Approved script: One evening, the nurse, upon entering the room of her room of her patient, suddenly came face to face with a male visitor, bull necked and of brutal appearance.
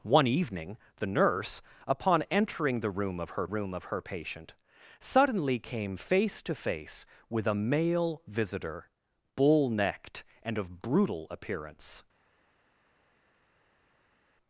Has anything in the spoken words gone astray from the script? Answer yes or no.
no